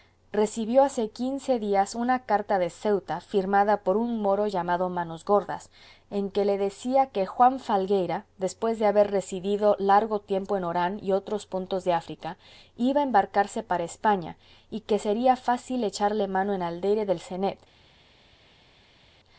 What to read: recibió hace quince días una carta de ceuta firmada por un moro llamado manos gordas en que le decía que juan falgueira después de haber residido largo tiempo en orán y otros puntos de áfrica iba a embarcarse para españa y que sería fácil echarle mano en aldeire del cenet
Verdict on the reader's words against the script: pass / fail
pass